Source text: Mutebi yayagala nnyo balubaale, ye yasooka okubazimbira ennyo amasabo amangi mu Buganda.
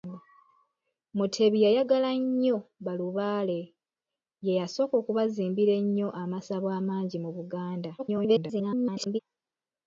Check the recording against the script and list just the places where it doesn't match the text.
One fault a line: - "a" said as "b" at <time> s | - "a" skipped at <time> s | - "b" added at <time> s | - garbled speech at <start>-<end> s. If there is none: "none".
- garbled speech at 8.0-9.2 s